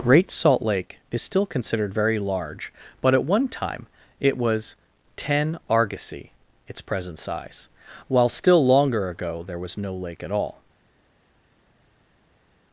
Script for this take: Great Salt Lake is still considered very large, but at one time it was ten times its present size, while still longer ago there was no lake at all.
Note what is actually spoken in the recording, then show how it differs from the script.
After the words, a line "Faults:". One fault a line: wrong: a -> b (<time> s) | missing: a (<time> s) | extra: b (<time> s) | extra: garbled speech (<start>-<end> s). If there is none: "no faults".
Great Salt Lake is still considered very large, but at one time it was ten argosy its present size, while still longer ago there was no lake at all.
Faults:
wrong: times -> argosy (5.7 s)